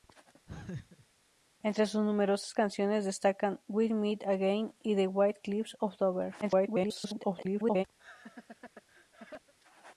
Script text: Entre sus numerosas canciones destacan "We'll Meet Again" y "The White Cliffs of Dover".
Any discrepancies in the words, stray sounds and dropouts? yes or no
yes